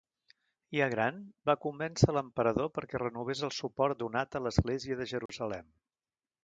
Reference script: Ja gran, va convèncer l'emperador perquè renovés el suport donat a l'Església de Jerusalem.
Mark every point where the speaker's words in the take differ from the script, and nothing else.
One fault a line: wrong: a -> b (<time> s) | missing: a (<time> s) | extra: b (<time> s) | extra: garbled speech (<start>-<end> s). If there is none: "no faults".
no faults